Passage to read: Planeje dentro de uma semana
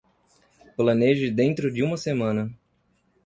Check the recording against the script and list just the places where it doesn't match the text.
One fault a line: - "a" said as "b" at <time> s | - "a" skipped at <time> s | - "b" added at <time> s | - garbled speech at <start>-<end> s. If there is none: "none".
none